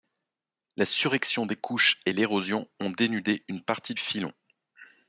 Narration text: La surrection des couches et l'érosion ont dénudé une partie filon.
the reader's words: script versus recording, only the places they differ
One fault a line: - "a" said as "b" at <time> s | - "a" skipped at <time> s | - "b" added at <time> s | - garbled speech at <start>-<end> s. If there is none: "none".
none